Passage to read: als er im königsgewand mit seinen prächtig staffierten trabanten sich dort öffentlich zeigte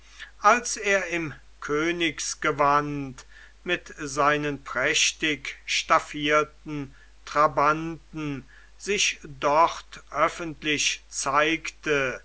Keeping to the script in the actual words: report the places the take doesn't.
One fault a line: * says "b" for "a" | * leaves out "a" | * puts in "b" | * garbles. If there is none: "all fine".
all fine